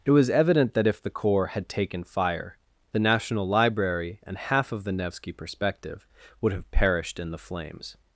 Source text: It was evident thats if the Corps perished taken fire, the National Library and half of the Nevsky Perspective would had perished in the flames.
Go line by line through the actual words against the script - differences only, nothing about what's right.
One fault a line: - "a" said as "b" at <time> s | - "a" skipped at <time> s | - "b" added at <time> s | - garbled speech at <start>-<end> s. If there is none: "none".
- "thats" said as "that" at 0.7 s
- "perished" said as "had" at 1.5 s
- "had" said as "have" at 6.5 s